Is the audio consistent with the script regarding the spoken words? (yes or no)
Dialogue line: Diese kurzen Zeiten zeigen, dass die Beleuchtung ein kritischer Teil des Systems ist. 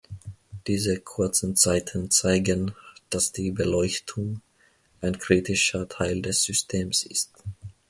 yes